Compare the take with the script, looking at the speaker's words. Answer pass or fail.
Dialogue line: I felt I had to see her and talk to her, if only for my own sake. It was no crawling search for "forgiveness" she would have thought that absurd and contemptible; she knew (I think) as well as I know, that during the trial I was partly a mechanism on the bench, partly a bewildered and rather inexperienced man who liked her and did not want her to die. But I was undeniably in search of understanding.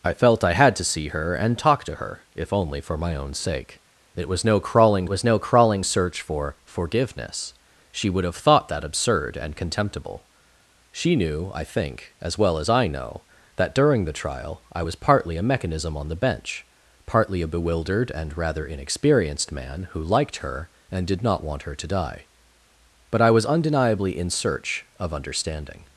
fail